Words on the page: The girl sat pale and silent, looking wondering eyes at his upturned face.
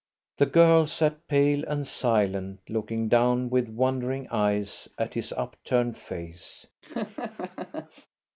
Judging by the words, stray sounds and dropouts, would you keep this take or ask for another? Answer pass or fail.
fail